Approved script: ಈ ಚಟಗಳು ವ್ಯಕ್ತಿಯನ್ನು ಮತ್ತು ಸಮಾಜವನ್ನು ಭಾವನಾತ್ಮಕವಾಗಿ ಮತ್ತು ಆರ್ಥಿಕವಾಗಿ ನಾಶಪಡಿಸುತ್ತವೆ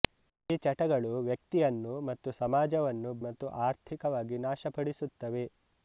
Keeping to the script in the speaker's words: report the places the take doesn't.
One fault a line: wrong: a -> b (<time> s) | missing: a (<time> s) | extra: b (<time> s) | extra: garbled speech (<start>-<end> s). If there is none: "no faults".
missing: ಭಾವನಾತ್ಮಕವಾಗಿ (3.1 s)